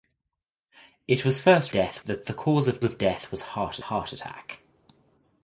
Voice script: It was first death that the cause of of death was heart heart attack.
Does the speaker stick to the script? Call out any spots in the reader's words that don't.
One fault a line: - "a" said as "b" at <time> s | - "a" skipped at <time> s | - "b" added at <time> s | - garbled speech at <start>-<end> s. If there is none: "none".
none